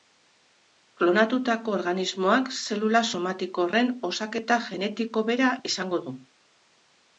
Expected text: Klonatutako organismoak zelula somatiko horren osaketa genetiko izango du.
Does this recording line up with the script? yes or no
no